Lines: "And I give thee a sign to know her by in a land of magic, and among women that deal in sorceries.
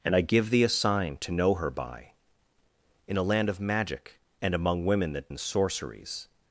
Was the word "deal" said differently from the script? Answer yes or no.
yes